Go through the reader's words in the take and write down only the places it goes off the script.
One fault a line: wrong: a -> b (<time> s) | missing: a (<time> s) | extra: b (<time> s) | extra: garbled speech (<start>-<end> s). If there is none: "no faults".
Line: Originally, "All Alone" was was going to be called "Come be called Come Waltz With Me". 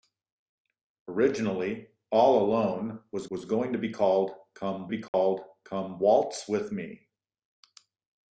no faults